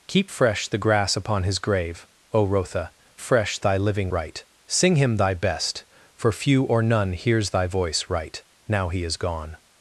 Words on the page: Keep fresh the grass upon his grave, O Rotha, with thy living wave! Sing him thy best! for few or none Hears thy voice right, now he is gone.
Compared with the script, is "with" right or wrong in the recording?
wrong